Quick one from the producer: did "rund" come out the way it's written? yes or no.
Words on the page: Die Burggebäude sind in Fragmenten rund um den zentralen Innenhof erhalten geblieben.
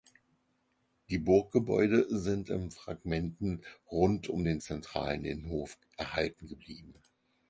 yes